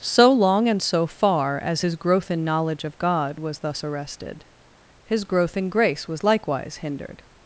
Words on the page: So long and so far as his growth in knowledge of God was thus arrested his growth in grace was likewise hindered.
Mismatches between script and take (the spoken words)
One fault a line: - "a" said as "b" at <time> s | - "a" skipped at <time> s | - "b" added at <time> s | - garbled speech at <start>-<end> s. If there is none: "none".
none